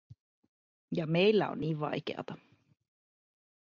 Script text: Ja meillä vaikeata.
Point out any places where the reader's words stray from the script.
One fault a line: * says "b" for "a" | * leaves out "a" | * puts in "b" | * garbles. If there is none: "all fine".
* puts in "on niin"